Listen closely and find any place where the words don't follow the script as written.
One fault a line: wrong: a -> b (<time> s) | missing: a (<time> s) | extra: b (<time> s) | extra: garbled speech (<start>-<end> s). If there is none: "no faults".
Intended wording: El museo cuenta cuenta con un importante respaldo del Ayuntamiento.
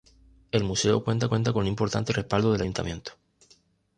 no faults